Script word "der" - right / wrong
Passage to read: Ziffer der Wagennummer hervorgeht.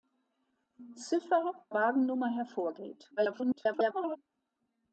wrong